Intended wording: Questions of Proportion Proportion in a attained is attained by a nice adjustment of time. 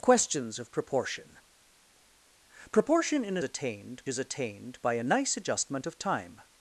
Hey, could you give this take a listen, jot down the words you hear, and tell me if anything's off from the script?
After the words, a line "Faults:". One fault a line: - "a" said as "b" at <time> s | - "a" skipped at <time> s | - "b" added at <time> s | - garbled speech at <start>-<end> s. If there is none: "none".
Questions of Proportion Proportion in a attained is attained by a nice adjustment of time.
Faults:
none